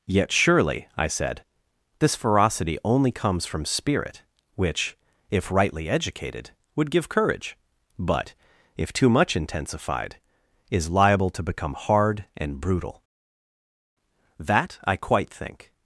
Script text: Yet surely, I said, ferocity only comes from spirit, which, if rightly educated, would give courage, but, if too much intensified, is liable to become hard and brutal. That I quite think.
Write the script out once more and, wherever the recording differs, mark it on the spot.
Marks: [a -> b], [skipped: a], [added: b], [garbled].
Yet surely, I said, [added: this] ferocity only comes from spirit, which, if rightly educated, would give courage, but, if too much intensified, is liable to become hard and brutal. That I quite think.